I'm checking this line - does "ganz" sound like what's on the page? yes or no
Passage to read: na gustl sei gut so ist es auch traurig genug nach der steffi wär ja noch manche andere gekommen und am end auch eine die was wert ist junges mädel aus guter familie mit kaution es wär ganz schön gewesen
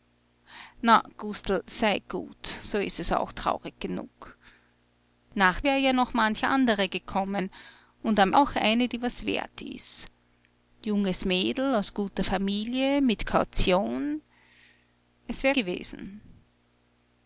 no